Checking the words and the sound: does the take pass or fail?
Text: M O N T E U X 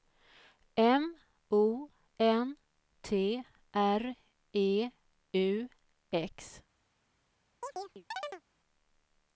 fail